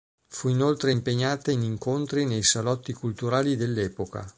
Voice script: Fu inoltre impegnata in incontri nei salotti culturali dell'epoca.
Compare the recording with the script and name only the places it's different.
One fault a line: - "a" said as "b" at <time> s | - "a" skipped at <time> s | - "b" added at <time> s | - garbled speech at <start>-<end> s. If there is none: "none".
none